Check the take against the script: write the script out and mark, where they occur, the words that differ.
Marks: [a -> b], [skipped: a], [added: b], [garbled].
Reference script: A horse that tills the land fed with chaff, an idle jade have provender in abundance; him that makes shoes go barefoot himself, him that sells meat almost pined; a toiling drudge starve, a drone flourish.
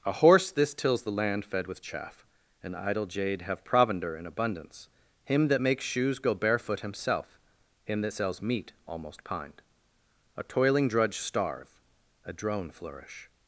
A horse [that -> this] tills the land fed with chaff, an idle jade have provender in abundance; him that makes shoes go barefoot himself, him that sells meat almost pined; a toiling drudge starve, a drone flourish.